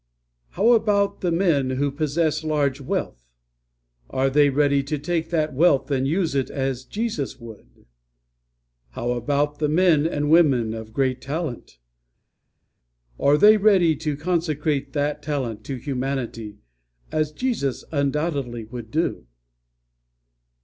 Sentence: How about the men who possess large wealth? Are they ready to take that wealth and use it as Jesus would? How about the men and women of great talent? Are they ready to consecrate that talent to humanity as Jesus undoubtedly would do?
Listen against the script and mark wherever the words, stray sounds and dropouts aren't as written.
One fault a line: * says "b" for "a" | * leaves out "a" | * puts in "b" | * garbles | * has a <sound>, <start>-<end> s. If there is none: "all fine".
all fine